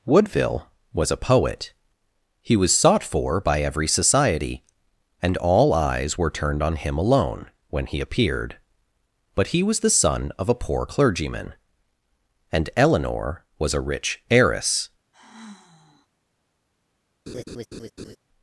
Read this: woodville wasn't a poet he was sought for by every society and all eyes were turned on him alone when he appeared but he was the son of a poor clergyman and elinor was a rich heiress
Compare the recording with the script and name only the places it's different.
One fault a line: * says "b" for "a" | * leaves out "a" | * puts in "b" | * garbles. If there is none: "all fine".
* says "was" for "wasn't"